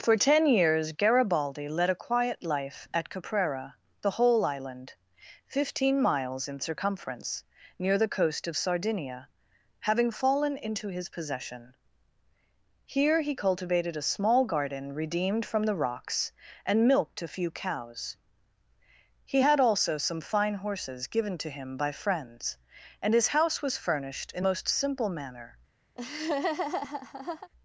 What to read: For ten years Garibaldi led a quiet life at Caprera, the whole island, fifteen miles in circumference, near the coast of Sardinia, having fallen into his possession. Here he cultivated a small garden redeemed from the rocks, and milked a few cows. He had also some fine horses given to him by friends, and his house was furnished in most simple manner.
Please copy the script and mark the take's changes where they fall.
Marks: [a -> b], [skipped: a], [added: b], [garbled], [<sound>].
For ten years Garibaldi led a quiet life at Caprera, the whole island, fifteen miles in circumference, near the coast of Sardinia, having fallen into his possession. Here he cultivated a small garden redeemed from the rocks, and milked a few cows. He had also some fine horses given to him by friends, and his house was furnished in most simple manner. [laugh]